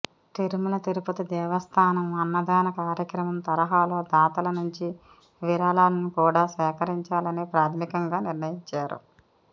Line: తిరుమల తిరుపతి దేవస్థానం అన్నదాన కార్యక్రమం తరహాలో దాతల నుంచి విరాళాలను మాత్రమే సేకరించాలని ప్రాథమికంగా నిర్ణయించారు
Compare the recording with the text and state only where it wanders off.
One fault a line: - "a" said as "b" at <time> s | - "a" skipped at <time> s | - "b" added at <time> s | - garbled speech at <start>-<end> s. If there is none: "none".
- "మాత్రమే" said as "కూడా" at 6.2 s